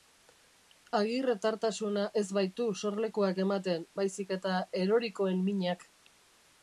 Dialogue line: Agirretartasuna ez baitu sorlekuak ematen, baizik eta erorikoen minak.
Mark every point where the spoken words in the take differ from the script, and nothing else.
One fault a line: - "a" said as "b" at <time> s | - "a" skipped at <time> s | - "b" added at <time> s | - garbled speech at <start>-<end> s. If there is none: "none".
none